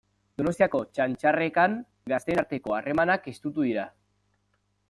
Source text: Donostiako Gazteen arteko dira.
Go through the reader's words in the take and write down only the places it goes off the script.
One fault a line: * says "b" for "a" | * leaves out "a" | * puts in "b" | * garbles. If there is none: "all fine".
* puts in "Txantxarrekan"
* puts in "harremanak estutu"